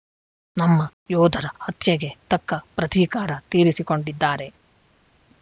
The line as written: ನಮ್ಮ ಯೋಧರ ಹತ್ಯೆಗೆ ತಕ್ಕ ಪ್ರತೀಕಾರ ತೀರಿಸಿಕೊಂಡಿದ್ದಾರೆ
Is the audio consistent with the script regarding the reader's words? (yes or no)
yes